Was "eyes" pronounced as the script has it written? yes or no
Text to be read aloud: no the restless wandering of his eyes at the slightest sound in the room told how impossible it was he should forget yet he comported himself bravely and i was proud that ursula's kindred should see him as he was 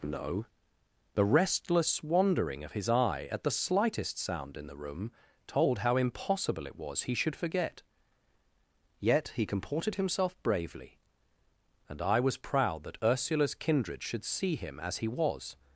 no